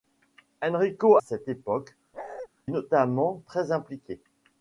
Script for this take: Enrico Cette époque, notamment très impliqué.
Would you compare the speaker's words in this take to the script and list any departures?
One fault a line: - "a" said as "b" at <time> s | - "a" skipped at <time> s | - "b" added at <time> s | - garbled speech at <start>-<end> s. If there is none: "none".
none